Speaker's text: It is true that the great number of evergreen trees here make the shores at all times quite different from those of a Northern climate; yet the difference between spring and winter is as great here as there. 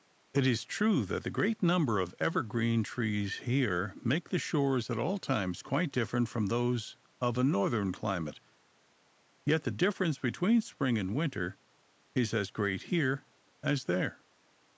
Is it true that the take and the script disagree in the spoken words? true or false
false